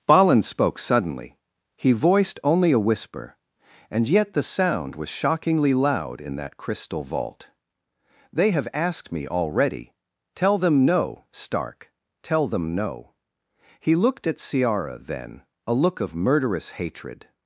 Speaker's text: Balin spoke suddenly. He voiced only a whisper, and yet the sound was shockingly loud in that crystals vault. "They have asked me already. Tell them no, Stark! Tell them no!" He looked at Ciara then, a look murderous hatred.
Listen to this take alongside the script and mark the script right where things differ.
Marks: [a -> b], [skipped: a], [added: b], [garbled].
Balin spoke suddenly. He voiced only a whisper, and yet the sound was shockingly loud in that [crystals -> crystal] vault. "They have asked me already. Tell them no, Stark! Tell them no!" He looked at Ciara then, a look [added: of] murderous hatred.